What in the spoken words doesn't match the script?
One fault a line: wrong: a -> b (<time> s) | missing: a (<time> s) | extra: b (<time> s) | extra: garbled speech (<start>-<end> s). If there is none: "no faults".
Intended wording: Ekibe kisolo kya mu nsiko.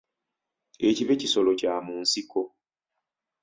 no faults